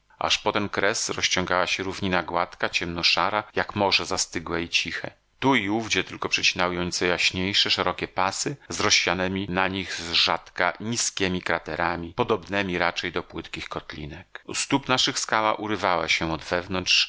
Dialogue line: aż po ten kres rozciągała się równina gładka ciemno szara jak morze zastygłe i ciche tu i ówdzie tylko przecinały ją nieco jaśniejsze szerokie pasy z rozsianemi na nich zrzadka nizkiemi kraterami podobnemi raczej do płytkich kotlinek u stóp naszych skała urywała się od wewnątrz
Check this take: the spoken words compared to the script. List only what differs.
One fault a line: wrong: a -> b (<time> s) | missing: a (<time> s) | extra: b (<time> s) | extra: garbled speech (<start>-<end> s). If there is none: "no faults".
no faults